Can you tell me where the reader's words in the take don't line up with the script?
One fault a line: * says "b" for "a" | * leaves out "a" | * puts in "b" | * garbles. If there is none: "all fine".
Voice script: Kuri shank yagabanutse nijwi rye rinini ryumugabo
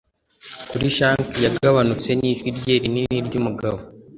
all fine